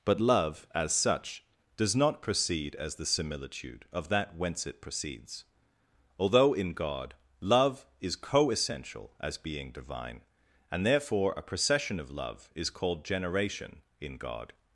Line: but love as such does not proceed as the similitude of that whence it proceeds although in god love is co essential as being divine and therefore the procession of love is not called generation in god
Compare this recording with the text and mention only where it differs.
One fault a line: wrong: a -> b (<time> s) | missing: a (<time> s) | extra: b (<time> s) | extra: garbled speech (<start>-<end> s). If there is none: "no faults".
wrong: the -> a (11.4 s)
missing: not (12.7 s)